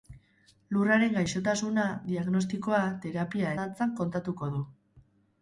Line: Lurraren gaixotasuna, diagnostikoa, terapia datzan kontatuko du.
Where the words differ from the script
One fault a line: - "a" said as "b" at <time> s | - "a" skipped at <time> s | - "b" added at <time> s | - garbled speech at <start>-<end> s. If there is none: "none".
none